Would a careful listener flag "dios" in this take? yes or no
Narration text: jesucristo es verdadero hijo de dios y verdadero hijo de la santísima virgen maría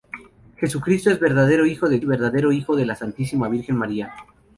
yes